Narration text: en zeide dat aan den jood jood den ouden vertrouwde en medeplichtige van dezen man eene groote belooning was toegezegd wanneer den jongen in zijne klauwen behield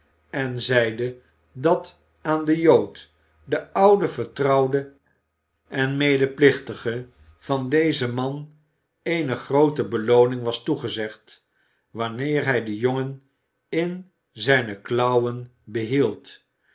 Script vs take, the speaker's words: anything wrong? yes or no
yes